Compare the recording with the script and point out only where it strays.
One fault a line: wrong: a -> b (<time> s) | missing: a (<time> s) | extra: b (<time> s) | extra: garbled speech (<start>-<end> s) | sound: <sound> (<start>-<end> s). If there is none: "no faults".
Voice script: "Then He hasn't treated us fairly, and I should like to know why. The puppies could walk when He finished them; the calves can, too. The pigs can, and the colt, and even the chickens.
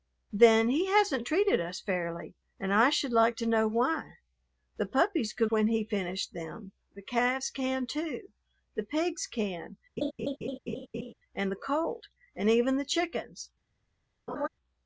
missing: walk (5.5 s)
sound: laugh (10.0-11.1 s)
sound: laugh (14.3-14.5 s)